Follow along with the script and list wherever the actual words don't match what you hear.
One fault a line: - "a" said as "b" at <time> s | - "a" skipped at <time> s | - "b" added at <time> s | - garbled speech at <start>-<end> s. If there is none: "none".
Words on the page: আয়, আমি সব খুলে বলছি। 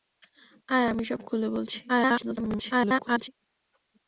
- garbled speech at 1.9-3.3 s